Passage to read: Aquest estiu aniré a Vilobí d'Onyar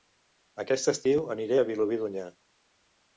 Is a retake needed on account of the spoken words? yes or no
no